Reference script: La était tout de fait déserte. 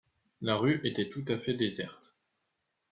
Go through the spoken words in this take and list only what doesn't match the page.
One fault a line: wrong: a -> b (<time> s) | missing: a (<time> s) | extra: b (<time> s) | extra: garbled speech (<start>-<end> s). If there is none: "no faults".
extra: rue (0.5 s)
wrong: de -> à (1.3 s)